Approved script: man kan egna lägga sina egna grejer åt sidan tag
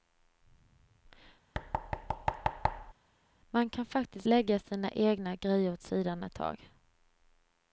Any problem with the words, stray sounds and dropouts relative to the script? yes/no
yes